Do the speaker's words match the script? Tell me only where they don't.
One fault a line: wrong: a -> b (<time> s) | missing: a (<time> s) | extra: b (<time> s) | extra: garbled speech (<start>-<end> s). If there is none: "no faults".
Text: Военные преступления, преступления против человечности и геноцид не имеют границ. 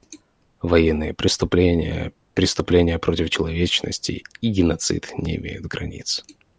no faults